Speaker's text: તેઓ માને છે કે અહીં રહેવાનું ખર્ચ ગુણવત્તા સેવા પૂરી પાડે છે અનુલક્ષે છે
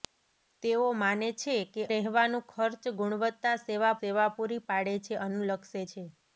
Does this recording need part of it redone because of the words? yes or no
yes